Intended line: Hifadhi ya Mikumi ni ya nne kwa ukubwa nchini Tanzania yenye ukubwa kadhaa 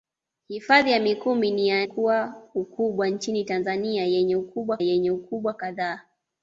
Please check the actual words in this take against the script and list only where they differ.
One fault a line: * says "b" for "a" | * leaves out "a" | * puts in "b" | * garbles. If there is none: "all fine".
* leaves out "nne"
* puts in "yenye ukubwa"